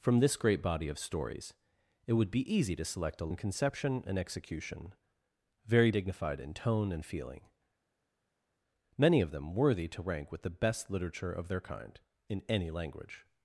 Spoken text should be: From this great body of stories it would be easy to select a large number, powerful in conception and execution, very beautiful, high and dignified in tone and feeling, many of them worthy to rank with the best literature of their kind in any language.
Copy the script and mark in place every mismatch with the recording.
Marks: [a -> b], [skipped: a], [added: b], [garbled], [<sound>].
From this great body of stories it would be easy to select a [skipped: large number, powerful] in conception and execution, very [skipped: beautiful, high and] dignified in tone and feeling, many of them worthy to rank with the best literature of their kind in any language.